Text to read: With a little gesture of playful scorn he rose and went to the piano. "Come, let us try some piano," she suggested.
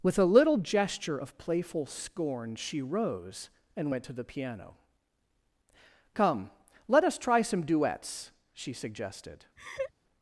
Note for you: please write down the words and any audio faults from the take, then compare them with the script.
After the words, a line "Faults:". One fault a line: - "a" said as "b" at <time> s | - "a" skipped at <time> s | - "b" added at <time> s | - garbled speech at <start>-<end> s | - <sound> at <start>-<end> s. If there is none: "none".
With a little gesture of playful scorn she rose and went to the piano. "Come, let us try some duets," she suggested.
Faults:
- "he" said as "she" at 2.5 s
- "piano" said as "duets" at 7.6 s
- laugh at 9.6-9.9 s